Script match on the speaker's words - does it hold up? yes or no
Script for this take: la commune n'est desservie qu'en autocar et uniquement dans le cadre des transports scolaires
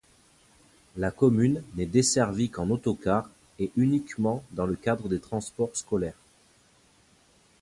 yes